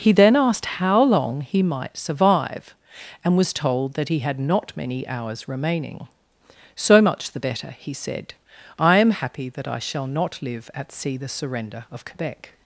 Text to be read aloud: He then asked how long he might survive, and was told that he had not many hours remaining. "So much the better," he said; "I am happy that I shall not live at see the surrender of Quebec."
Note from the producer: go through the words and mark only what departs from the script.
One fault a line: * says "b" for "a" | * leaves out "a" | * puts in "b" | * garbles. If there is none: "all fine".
all fine